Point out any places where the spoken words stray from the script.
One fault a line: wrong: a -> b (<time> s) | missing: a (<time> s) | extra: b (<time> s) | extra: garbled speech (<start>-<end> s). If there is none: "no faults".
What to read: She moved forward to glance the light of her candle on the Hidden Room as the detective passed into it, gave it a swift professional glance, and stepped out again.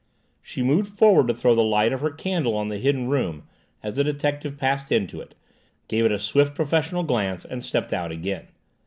wrong: glance -> throw (1.4 s)